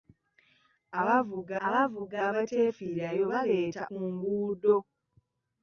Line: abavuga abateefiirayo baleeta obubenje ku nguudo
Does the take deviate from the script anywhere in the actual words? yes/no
yes